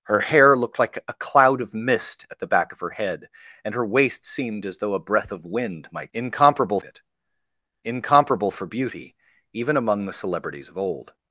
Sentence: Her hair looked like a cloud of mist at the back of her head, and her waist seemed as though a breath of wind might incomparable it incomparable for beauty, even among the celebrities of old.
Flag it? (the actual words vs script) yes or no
no